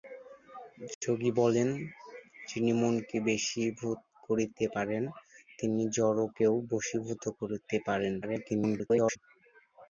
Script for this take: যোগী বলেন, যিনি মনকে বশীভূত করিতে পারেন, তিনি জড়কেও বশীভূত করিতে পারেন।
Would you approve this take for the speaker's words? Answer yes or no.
no